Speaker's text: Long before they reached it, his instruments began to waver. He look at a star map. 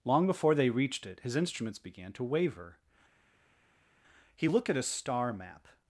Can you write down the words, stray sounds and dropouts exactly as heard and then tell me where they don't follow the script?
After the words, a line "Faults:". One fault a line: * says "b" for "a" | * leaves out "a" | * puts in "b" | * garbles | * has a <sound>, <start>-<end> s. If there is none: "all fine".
Long before they reached it, his instruments began to waver. He looked at a star map.
Faults:
* says "looked" for "look"